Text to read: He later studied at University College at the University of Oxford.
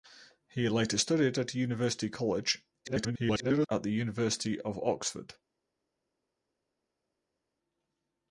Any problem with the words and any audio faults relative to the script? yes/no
yes